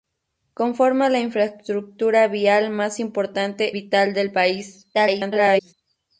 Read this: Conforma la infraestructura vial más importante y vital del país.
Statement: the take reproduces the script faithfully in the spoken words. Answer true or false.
false